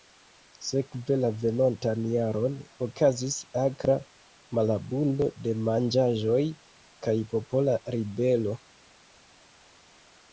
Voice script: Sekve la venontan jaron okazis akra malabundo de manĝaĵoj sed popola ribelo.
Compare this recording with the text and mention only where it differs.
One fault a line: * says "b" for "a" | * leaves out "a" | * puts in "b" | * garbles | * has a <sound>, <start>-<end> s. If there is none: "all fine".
* says "kaj" for "sed"